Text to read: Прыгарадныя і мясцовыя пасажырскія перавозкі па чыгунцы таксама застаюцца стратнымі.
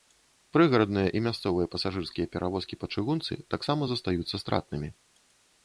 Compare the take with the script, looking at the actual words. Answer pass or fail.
pass